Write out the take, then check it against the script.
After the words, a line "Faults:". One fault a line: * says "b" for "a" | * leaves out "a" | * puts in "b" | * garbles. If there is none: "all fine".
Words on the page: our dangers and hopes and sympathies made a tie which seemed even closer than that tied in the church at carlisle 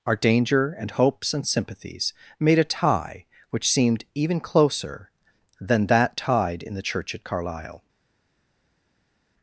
our danger and hopes and sympathies made a tie which seemed even closer than that tied in the church at carlisle
Faults:
* says "danger" for "dangers"